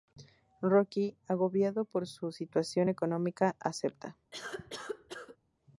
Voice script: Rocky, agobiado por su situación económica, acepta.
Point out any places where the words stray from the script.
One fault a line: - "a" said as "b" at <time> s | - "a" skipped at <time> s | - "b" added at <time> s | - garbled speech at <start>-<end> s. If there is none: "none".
none